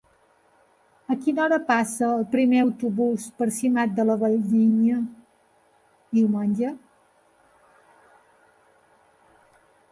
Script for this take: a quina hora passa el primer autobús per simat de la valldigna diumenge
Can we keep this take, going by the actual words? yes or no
yes